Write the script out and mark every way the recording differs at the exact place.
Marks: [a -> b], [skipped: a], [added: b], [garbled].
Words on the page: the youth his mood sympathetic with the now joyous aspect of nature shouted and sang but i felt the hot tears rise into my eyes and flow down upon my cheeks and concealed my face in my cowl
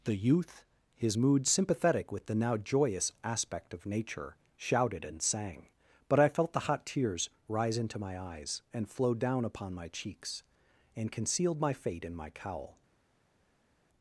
the youth his mood sympathetic with the now joyous aspect of nature shouted and sang but i felt the hot tears rise into my eyes and flow down upon my cheeks and concealed my [face -> fate] in my cowl